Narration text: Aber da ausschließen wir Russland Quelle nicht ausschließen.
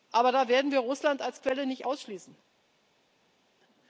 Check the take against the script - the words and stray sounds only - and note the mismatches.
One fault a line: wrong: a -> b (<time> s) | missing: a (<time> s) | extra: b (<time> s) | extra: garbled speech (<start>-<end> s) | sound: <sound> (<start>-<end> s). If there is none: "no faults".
wrong: ausschließen -> werden (0.5 s)
extra: als (1.2 s)